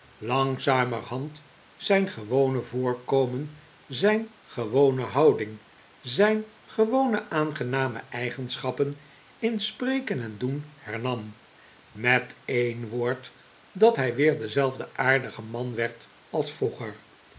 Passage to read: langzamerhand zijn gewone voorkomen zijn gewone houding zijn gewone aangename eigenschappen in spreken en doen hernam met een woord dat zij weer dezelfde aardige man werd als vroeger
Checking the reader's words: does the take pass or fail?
fail